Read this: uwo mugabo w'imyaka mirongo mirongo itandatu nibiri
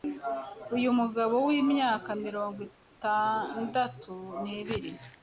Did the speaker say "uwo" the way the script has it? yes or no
no